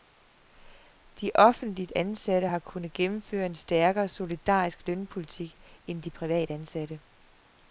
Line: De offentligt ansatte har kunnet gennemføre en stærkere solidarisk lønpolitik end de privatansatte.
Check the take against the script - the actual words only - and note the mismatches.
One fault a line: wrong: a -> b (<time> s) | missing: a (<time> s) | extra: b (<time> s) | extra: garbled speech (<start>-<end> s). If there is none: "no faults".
no faults